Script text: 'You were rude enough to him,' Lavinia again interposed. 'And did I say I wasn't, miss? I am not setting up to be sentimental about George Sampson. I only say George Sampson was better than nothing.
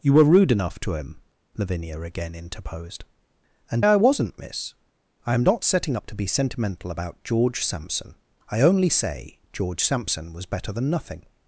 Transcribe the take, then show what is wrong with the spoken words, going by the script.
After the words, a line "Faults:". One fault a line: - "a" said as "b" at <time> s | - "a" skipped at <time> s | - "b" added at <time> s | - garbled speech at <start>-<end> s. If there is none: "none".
'You were rude enough to him,' Lavinia again interposed. 'And I wasn't, miss? I am not setting up to be sentimental about George Sampson. I only say George Sampson was better than nothing.
Faults:
- "did I say" skipped at 3.8 s